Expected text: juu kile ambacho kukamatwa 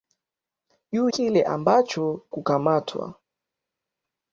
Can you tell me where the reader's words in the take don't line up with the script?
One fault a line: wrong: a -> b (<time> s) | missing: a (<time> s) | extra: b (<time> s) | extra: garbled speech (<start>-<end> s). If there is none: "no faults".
no faults